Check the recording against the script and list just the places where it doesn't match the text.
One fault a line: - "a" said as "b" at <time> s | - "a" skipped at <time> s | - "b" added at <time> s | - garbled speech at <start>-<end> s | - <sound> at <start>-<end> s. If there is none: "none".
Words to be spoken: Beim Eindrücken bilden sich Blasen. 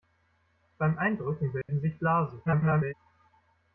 - dropout at 1.6-1.7 s
- garbled speech at 2.5-2.9 s